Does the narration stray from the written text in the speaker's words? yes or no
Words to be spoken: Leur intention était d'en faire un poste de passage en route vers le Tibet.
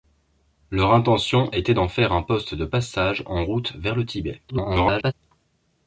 yes